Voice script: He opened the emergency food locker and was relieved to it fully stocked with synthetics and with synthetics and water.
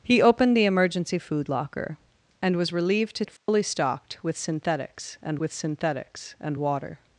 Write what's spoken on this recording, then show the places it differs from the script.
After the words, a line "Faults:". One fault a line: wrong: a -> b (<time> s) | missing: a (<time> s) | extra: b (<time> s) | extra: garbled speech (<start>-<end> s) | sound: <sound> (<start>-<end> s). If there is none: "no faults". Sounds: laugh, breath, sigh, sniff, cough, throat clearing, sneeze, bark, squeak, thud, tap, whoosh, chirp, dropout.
He opened the emergency food locker and was relieved to it fully stocked with synthetics and with synthetics and water.
Faults:
sound: dropout (3.4-3.5 s)